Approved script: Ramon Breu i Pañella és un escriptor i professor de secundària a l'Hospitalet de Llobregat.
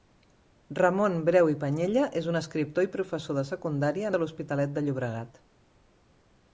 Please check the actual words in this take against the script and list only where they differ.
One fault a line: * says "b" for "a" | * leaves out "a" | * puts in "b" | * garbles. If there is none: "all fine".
all fine